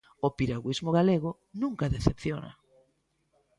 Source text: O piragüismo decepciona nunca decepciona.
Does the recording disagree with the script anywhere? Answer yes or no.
yes